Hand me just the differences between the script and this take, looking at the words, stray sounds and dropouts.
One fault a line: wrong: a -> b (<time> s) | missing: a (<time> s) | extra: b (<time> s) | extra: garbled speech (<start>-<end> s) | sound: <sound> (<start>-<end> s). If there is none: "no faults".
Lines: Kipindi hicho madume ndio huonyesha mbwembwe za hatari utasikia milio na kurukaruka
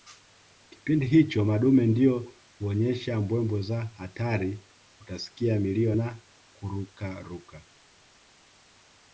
no faults